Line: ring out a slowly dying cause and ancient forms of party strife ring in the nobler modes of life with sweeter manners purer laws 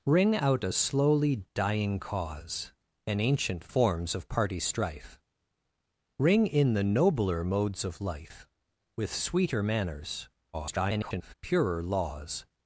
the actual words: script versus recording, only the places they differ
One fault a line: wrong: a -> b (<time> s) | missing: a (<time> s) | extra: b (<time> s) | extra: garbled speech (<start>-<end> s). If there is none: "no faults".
extra: garbled speech (10.5-11.3 s)